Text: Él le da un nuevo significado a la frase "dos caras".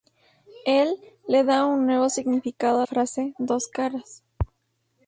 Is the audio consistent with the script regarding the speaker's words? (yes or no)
no